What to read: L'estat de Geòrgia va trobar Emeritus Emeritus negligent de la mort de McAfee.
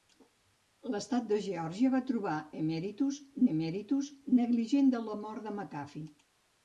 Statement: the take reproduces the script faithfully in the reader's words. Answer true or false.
true